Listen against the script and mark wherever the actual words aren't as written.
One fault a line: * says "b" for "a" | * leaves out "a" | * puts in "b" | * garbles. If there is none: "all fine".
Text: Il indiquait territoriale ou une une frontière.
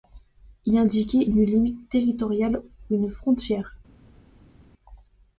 * puts in "une limite"
* leaves out "une"